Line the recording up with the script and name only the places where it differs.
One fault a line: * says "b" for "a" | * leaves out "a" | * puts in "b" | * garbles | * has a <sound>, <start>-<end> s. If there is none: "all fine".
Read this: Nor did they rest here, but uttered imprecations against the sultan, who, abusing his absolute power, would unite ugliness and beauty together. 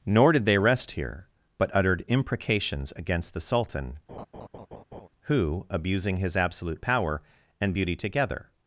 * has a laugh, 4.1-5.1 s
* leaves out "would unite ugliness"